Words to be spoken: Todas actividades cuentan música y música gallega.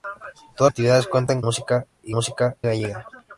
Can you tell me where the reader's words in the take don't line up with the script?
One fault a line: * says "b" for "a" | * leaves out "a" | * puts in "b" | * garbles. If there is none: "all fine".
all fine